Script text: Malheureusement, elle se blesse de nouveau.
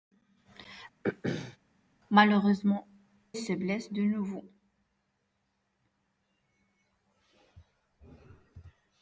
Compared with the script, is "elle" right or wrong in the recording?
wrong